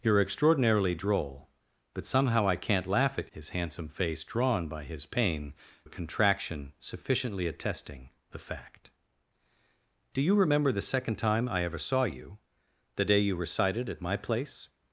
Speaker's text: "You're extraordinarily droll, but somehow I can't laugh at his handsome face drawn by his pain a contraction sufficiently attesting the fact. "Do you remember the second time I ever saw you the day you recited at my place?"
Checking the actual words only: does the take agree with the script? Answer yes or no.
yes